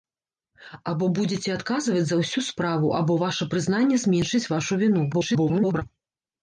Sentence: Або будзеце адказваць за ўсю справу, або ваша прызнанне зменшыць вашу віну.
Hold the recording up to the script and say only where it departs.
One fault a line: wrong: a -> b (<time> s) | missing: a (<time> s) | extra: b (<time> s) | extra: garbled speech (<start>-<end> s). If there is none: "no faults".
extra: garbled speech (5.1-5.8 s)